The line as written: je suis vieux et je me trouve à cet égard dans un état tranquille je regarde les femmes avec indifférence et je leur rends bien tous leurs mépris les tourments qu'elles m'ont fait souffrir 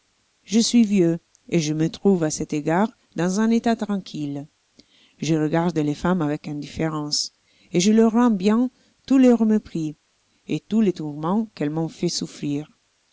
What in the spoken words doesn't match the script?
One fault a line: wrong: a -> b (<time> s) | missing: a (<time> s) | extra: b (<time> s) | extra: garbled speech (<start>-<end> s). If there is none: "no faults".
extra: et tous (10.5 s)